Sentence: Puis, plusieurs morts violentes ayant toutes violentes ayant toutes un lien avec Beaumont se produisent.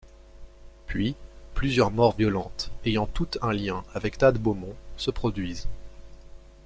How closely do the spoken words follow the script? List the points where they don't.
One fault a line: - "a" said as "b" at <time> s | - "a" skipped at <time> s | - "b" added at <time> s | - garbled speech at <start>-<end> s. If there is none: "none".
- "violentes ayant toutes" skipped at 3.4 s
- "Thad" added at 4.2 s